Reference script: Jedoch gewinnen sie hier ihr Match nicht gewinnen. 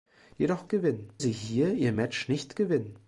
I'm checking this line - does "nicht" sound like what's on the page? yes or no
yes